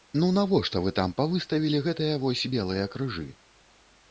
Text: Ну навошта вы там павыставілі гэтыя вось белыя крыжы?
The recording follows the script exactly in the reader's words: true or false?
true